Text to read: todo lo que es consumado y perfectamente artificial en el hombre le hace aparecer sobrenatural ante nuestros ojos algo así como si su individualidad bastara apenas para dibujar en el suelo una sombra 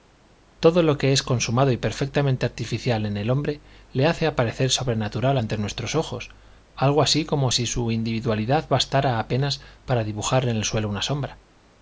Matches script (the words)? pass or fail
pass